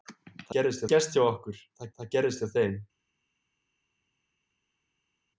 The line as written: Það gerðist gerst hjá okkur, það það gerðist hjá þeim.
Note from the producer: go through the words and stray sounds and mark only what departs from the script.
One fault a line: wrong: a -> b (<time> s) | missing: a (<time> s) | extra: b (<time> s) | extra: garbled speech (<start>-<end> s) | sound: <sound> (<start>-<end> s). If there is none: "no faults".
no faults